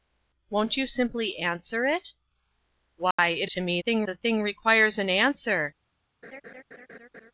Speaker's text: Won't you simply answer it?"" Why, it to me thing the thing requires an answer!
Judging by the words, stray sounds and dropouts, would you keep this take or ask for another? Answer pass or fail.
fail